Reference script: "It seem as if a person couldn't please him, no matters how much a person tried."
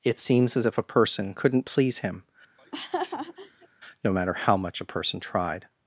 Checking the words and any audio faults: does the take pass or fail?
fail